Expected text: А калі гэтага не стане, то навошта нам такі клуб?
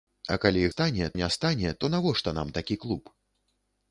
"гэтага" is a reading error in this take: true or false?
true